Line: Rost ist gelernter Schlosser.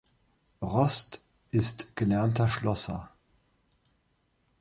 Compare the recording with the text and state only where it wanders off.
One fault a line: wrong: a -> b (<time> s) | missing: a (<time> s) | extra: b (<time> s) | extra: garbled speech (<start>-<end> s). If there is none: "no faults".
no faults